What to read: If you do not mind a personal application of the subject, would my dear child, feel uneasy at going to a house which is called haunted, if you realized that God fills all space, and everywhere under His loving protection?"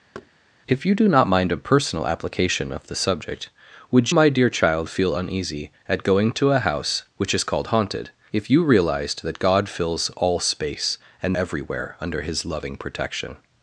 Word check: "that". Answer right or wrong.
right